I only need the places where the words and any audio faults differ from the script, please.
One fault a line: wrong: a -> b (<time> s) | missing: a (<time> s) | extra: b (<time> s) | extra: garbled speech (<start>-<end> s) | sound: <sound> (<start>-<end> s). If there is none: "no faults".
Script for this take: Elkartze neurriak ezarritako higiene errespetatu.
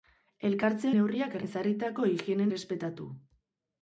no faults